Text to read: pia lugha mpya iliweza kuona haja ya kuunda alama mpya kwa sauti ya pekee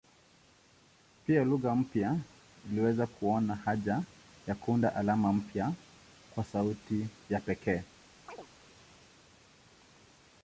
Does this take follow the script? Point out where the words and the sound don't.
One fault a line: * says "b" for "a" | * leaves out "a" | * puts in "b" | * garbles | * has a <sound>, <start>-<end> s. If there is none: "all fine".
* has a chirp, 8.3-8.5 s